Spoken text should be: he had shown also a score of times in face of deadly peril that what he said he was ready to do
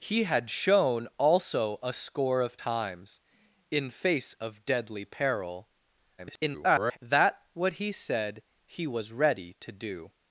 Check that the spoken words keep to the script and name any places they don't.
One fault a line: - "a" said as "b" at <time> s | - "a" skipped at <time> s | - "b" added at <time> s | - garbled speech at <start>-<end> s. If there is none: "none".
- garbled speech at 6.2-7.0 s